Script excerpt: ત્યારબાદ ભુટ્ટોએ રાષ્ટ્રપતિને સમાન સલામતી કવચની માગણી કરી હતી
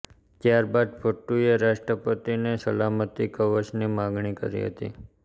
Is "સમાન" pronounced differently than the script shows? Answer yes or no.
yes